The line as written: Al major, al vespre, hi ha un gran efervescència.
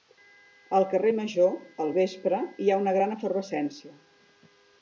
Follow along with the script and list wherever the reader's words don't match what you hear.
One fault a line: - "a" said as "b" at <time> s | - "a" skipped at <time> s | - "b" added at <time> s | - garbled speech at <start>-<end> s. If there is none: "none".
- "carrer" added at 0.9 s
- "un" said as "una" at 2.8 s